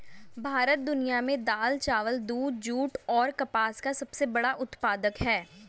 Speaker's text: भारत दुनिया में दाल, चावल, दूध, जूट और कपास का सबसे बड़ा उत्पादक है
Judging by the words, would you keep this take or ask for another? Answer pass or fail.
pass